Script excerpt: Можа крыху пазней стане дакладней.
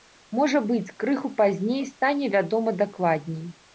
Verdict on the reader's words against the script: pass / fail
fail